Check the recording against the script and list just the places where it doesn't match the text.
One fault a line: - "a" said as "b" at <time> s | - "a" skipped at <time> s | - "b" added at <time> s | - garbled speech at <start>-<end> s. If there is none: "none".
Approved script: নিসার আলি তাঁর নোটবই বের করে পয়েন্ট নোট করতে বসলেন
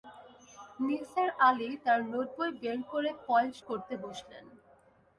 - "নোট" skipped at 3.5 s